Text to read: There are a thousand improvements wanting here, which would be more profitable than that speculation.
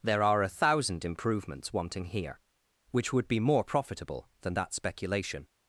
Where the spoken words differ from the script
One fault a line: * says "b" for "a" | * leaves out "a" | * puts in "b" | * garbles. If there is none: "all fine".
all fine